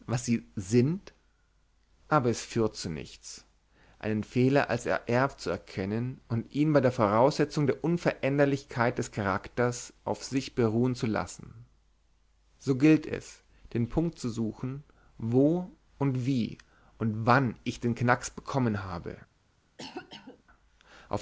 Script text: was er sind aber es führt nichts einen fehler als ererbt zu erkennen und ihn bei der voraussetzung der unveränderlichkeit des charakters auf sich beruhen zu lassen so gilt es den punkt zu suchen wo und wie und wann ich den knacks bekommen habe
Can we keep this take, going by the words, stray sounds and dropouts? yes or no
no